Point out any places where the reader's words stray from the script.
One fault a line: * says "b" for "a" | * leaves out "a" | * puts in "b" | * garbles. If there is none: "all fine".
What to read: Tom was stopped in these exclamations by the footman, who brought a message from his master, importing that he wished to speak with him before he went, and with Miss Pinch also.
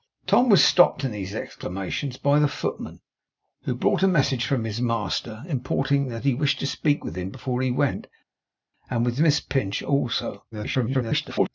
* garbles